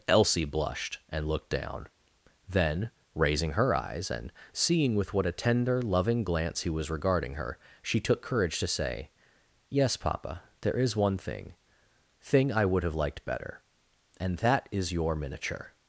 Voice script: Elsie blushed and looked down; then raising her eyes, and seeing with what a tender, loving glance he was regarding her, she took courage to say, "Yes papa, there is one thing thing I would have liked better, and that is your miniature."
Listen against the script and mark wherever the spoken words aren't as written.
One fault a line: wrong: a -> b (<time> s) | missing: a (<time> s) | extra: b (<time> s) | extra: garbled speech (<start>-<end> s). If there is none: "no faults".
no faults